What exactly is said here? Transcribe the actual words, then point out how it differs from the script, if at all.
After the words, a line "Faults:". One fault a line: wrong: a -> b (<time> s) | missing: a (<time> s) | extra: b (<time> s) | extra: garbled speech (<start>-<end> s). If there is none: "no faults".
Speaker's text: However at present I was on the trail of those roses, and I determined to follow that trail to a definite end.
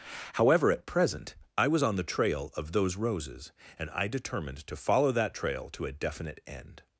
However at present I was on the trail of those roses, and I determined to follow that trail to a definite end.
Faults:
no faults